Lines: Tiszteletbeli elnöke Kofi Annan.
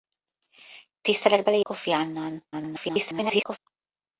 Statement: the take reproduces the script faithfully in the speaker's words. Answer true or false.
false